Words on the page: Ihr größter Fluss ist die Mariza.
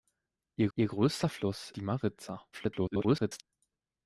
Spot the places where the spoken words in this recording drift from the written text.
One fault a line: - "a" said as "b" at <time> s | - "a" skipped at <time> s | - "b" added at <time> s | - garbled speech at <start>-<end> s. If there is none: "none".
- "ihr" added at 0.7 s
- "ist" skipped at 1.7 s
- garbled speech at 2.5-3.4 s